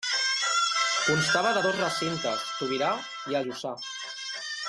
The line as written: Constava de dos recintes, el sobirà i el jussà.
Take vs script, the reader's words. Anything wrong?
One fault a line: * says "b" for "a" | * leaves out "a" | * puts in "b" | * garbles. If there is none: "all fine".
* leaves out "el"
* leaves out "el"